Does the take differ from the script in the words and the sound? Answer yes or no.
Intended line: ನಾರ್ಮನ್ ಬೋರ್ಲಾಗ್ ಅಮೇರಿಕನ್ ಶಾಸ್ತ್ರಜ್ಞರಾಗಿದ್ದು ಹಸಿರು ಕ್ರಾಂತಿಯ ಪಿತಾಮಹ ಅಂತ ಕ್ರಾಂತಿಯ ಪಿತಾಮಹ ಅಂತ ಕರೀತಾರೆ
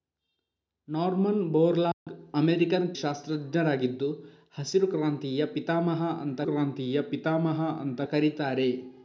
yes